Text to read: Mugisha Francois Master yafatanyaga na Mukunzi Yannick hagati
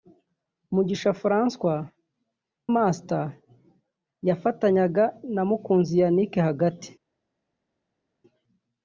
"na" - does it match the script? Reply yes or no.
yes